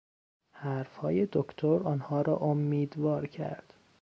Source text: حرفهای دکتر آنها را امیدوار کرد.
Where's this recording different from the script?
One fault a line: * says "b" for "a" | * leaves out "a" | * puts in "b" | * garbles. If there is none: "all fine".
all fine